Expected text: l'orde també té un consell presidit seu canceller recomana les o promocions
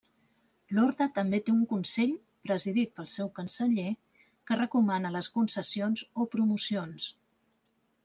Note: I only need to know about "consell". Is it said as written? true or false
true